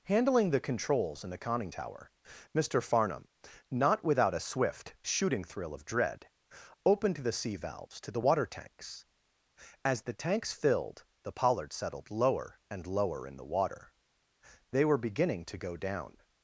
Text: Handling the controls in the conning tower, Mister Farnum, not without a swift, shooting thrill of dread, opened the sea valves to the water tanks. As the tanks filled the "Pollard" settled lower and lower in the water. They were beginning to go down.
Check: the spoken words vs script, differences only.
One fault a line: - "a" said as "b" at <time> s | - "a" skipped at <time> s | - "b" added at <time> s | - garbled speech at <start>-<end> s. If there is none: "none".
none